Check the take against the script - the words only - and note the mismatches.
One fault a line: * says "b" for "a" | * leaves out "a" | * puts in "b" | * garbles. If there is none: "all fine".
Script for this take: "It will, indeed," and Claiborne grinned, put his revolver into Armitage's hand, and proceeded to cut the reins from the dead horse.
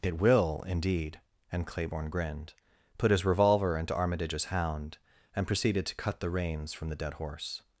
* says "hound" for "hand"